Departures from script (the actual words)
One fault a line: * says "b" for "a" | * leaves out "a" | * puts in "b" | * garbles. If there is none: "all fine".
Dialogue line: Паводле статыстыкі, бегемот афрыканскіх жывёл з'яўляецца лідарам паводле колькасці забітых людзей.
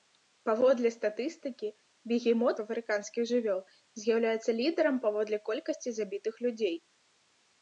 all fine